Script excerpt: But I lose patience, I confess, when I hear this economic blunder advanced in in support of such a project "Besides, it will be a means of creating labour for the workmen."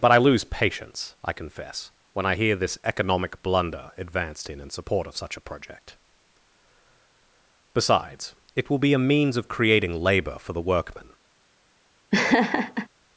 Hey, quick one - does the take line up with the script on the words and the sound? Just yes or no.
no